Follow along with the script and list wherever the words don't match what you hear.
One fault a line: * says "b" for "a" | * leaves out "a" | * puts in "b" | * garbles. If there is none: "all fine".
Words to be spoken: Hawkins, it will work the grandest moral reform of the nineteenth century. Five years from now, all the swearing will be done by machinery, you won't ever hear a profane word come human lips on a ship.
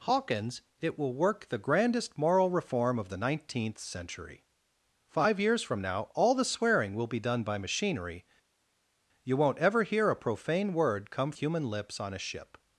all fine